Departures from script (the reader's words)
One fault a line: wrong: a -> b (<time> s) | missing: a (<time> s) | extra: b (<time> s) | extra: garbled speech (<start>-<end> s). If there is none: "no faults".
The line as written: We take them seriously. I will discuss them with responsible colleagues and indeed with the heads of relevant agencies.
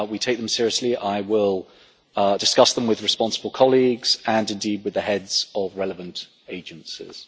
no faults